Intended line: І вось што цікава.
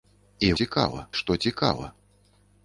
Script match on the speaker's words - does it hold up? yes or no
no